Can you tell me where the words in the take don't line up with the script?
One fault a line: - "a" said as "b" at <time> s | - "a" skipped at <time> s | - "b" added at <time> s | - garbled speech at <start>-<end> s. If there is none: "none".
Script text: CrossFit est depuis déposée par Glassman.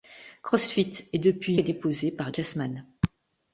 none